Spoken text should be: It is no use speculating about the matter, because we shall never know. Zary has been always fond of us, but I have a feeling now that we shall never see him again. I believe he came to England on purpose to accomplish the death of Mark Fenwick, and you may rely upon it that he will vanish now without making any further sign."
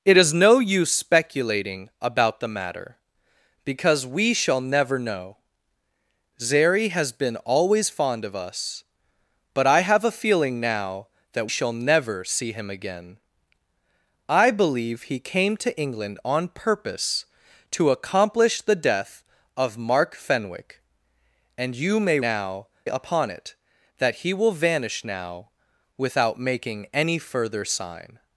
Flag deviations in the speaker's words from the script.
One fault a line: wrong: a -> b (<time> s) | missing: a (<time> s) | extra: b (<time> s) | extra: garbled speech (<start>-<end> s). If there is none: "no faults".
missing: we (11.5 s)
wrong: rely -> now (22.2 s)